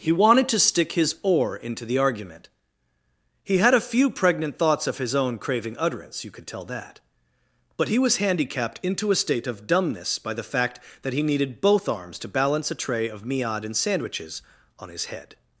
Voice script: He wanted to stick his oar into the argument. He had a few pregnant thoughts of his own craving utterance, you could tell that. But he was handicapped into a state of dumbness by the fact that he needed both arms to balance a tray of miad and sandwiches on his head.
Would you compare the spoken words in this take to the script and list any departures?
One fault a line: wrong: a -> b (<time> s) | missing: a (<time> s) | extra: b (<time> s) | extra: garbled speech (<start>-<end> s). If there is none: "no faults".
no faults